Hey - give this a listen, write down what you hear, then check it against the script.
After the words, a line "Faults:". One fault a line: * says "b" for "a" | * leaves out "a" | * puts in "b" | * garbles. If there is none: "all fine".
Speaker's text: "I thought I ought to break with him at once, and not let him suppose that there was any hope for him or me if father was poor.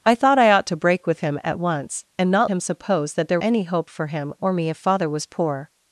"I thought I ought to break with him at once, and not him suppose that there any hope for him or me if father was poor.
Faults:
* leaves out "let"
* leaves out "was"